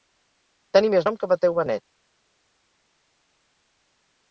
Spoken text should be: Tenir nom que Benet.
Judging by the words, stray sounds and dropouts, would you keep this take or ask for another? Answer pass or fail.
fail